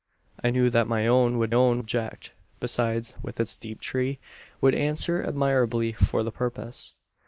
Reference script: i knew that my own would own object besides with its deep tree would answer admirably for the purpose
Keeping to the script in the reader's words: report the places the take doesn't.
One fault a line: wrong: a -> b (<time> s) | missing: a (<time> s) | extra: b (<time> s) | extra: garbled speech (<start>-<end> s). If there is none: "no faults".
no faults